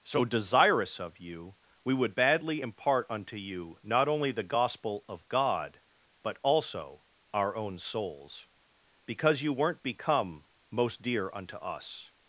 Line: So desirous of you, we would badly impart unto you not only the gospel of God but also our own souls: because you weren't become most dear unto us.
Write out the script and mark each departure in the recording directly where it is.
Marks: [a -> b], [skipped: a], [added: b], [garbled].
So desirous of you, we would badly impart unto you not only the gospel of God but also our own souls: because you weren't become most dear unto us.